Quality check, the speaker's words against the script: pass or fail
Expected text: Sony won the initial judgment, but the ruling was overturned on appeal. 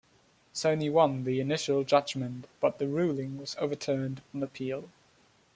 pass